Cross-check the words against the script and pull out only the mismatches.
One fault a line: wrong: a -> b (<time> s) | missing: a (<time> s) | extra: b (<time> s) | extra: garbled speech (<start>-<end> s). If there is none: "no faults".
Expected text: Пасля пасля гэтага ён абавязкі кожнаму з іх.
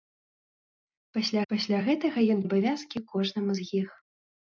no faults